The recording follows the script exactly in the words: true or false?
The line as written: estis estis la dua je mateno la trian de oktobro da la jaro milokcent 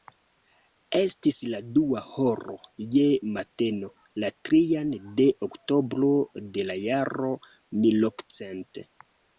false